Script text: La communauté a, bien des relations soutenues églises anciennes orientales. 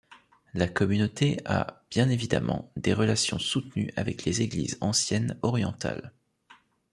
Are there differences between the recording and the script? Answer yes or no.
yes